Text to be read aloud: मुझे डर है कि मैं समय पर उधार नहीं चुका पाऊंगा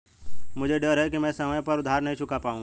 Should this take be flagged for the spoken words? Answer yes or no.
no